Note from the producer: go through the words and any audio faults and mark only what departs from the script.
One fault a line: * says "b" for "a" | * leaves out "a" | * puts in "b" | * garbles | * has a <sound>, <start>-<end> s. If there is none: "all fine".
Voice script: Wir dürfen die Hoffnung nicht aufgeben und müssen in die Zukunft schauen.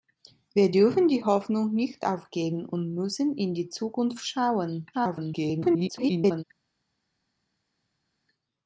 * garbles